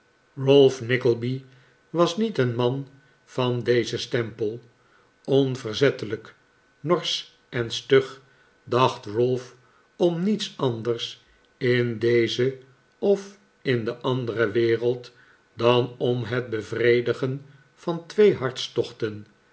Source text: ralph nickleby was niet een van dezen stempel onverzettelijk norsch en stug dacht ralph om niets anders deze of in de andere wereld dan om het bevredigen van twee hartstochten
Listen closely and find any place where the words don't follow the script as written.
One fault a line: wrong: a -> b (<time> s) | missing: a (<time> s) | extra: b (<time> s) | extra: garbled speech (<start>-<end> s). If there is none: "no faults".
extra: man (2.5 s)
extra: in (11.6 s)